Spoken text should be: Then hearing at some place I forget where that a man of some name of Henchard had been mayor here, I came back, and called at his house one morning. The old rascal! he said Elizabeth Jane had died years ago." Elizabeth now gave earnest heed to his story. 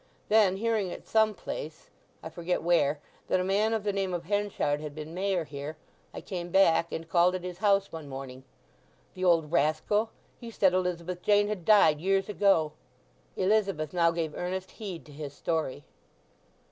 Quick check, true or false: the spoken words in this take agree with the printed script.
false